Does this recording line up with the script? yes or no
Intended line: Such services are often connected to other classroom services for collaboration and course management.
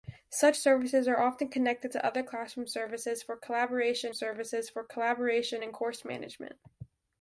no